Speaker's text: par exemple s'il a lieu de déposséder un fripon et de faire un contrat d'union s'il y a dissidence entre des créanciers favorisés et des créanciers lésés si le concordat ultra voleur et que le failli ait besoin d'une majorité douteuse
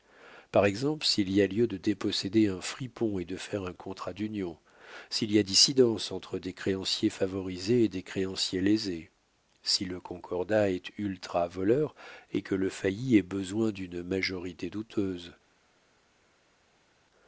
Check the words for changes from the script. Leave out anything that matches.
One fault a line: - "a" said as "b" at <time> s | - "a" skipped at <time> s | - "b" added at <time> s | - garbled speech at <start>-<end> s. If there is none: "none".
- "y" added at 1.3 s
- "est" added at 10.7 s